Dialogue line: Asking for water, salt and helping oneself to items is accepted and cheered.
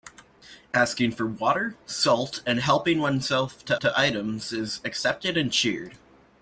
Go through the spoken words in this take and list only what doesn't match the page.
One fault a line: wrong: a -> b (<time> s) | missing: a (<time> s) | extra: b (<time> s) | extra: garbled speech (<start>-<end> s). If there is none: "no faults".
extra: to (3.8 s)